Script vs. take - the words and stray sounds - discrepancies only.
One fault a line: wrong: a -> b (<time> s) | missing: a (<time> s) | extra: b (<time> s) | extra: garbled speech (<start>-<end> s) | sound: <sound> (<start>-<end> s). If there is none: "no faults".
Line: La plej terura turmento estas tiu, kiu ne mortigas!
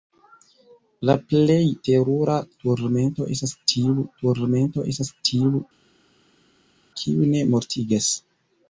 extra: turmento estas tiu (4.2 s)